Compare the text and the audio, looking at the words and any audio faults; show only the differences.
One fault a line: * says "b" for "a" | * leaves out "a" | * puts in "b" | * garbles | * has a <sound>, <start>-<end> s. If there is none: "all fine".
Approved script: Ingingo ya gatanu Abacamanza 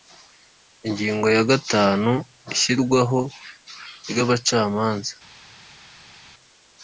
* puts in "Ishyirwaho ry"